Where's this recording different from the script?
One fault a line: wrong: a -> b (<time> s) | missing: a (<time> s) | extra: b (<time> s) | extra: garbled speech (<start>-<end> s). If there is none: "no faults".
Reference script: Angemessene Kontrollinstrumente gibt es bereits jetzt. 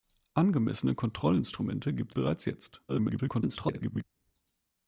missing: es (2.1 s)
extra: garbled speech (2.9-4.0 s)